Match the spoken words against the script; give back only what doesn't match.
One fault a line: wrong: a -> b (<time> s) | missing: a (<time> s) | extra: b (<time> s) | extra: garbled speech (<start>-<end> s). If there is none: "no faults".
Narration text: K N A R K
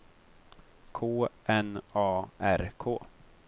no faults